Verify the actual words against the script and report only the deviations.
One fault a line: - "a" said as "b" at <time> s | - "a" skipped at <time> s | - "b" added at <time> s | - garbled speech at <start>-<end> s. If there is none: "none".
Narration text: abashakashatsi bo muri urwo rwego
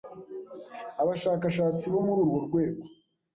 none